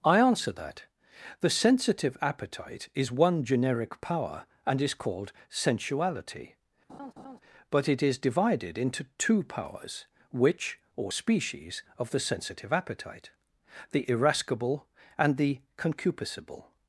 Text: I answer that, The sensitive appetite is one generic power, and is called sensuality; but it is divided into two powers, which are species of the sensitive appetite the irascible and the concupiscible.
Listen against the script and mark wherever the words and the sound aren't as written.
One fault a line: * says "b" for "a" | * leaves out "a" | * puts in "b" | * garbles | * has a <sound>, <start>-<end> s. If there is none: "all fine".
* has a laugh, 6.9-7.4 s
* says "or" for "are"